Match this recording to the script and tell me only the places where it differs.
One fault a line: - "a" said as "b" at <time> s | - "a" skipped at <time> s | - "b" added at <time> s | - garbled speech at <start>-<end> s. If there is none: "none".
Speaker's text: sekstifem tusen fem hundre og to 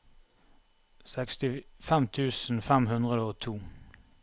none